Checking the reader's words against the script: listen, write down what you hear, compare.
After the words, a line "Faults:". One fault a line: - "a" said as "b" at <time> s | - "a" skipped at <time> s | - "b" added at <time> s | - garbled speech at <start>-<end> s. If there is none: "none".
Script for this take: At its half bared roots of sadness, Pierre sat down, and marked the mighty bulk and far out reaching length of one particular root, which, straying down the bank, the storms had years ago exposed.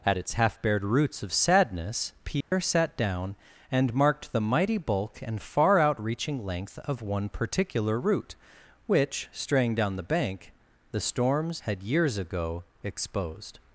At its half bared roots of sadness, Pierre sat down, and marked the mighty bulk and far out reaching length of one particular root, which, straying down the bank, the storms had years ago exposed.
Faults:
none